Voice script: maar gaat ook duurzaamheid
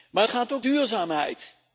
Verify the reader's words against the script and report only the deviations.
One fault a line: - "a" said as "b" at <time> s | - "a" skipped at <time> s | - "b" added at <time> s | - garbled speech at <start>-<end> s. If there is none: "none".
none